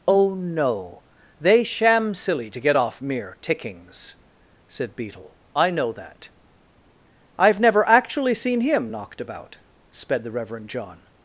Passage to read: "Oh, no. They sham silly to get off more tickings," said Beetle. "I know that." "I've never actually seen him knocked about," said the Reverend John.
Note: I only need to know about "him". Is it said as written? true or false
true